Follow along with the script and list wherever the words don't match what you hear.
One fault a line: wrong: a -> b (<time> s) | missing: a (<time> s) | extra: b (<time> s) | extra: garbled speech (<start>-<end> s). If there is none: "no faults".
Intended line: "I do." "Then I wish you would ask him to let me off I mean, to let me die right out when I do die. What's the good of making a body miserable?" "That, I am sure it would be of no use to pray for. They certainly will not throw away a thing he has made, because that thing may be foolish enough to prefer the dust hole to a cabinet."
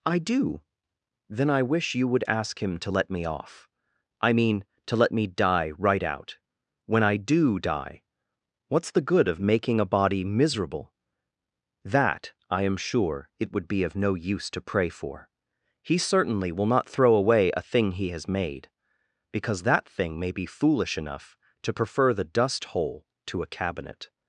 wrong: They -> He (15.8 s)